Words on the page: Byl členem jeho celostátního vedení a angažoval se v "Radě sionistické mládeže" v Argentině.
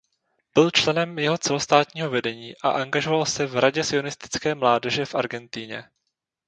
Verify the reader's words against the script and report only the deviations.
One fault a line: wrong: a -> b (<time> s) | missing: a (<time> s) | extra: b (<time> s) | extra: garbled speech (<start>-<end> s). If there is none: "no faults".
no faults